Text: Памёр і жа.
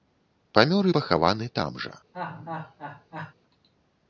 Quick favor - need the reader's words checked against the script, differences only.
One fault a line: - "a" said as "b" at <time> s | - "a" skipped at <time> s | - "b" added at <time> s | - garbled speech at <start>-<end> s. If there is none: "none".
- "пахаваны там" added at 1.0 s